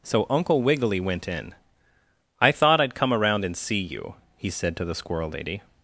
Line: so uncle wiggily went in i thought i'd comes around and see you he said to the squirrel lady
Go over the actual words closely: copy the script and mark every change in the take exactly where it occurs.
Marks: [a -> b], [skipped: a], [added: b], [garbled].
so uncle wiggily went in i thought i'd [comes -> come] around and see you he said to the squirrel lady